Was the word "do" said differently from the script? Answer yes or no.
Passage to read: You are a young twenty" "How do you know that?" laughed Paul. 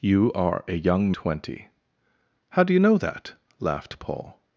no